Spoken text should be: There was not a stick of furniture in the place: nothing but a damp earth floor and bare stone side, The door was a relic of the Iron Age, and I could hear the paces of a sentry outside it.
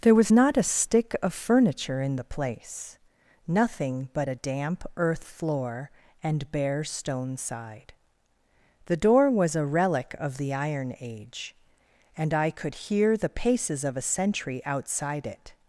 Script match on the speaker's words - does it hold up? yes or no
yes